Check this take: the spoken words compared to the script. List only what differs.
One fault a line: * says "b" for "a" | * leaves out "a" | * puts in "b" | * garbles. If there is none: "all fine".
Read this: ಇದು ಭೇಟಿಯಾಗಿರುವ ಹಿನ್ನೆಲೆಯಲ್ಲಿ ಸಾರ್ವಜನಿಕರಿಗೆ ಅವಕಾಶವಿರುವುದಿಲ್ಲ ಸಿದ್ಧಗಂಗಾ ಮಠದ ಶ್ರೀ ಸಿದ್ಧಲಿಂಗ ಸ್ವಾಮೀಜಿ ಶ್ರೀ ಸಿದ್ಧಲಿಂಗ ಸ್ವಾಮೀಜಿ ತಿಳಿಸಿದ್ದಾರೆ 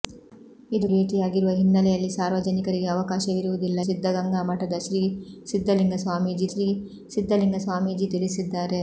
all fine